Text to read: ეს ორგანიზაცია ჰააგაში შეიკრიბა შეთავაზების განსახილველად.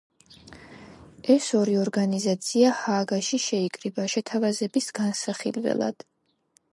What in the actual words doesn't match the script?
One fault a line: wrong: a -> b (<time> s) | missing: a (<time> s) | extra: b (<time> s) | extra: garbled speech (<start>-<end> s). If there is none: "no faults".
extra: ორი (1.6 s)